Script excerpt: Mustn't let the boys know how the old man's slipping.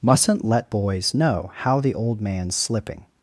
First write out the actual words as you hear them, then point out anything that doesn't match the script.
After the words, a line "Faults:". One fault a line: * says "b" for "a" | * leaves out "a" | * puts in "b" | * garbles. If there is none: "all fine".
Mustn't let boys know how the old man's slipping.
Faults:
* leaves out "the"